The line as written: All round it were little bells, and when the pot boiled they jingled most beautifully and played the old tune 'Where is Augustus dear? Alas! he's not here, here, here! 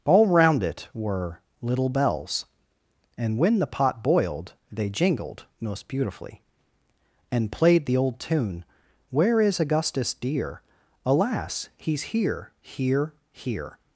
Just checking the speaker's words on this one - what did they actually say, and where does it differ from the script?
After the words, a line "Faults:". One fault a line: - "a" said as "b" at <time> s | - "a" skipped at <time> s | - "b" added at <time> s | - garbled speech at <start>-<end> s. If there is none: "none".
All round it were little bells, and when the pot boiled they jingled most beautifully and played the old tune 'Where is Augustus dear? Alas! he's here, here, here!
Faults:
- "not" skipped at 12.0 s